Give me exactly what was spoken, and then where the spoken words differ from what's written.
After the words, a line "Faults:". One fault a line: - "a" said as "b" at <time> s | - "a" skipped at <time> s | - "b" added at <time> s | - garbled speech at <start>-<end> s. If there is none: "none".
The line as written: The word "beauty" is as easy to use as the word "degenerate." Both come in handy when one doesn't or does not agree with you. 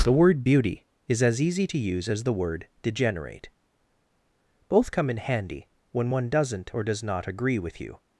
The word "beauty" is as easy to use as the word "degenerate." Both come in handy when one doesn't or does not agree with you.
Faults:
none